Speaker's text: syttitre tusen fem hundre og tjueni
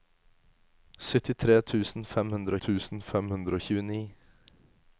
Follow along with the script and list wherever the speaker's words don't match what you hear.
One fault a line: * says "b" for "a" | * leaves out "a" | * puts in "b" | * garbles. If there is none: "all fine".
* puts in "tusen fem hundre"